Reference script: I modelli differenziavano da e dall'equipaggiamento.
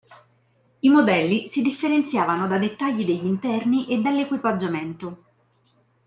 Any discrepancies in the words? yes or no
yes